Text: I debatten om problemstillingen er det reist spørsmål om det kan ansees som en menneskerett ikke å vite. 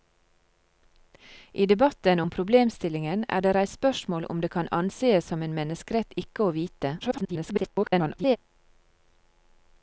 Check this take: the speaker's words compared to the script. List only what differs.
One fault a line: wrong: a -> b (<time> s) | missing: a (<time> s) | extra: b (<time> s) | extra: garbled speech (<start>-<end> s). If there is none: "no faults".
extra: garbled speech (7.0-8.4 s)